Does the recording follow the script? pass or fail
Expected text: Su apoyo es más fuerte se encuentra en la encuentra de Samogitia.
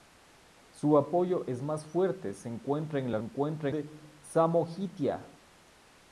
pass